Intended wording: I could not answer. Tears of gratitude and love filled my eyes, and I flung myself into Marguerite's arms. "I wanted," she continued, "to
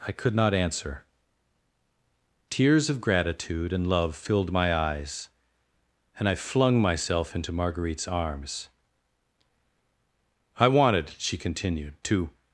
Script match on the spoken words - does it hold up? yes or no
yes